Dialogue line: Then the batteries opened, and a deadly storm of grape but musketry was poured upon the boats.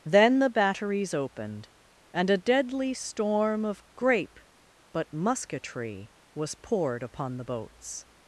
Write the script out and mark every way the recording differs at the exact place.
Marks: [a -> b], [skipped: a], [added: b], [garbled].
Then the batteries opened, and a deadly storm of grape but musketry was poured upon the boats.